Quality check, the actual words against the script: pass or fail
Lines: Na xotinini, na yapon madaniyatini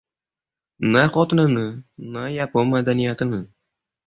pass